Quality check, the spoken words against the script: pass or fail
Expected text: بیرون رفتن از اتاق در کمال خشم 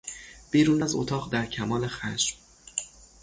fail